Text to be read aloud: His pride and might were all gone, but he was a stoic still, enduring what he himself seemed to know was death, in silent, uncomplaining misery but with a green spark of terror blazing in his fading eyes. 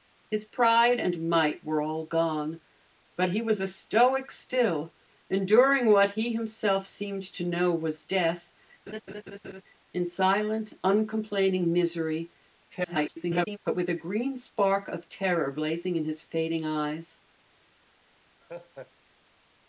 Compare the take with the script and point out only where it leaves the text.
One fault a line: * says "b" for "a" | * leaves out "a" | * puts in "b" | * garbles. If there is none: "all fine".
* garbles